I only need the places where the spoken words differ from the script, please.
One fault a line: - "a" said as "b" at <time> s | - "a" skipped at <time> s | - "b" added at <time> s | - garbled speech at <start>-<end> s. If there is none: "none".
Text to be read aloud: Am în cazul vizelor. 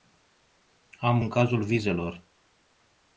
none